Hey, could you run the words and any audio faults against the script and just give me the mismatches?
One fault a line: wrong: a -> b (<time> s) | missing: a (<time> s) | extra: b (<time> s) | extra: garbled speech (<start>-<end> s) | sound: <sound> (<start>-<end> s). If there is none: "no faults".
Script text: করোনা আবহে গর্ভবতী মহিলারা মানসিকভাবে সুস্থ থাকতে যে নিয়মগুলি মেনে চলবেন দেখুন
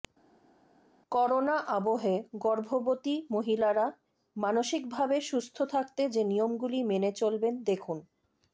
no faults